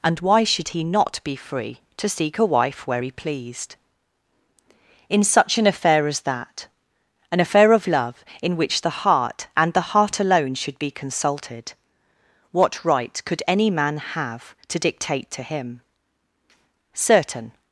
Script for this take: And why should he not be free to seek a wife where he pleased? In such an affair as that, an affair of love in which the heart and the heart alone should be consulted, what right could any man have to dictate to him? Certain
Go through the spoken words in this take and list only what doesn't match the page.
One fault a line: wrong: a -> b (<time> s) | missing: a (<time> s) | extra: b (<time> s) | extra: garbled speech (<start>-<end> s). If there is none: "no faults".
no faults